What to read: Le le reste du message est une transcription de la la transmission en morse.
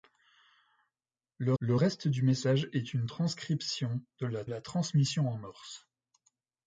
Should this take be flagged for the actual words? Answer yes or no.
no